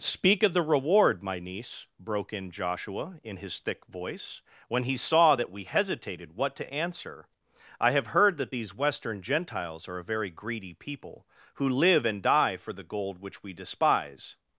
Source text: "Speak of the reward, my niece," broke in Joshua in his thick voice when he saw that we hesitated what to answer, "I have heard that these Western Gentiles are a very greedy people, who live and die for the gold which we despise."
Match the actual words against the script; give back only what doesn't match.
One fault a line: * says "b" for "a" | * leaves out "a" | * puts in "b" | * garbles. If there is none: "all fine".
all fine